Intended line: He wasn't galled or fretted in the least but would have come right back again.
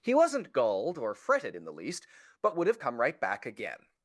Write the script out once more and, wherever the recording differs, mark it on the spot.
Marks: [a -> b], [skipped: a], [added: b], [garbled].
He wasn't galled or fretted in the least but would have come right back again.